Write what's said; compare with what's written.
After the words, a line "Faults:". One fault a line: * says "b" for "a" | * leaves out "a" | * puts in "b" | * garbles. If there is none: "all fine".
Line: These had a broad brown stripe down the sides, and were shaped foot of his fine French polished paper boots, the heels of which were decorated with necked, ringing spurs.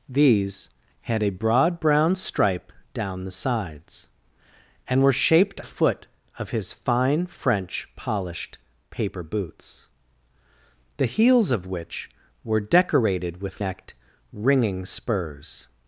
These had a broad brown stripe down the sides, and were shaped foot of his fine French polished paper boots, the heels of which were decorated with necked, ringing spurs.
Faults:
all fine